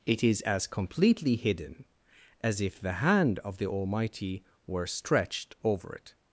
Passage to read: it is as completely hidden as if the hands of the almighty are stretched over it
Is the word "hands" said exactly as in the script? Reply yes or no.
no